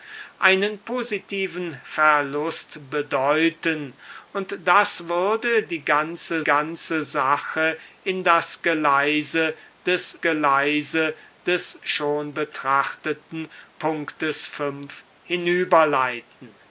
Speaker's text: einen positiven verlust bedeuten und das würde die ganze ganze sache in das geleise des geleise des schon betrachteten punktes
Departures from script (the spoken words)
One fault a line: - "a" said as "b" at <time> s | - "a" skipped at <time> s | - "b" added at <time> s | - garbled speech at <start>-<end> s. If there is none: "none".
none